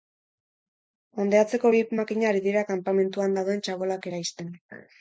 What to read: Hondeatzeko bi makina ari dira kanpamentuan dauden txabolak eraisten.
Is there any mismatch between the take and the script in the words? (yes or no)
no